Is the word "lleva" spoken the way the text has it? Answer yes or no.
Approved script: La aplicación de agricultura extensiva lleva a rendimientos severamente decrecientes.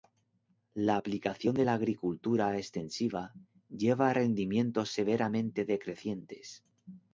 yes